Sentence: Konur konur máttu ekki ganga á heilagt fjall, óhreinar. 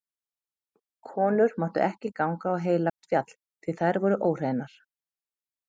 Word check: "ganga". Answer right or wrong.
right